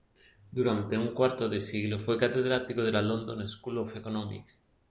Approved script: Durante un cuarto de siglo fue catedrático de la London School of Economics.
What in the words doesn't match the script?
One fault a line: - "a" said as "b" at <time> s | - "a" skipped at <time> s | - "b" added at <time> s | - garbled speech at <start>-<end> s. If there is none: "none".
none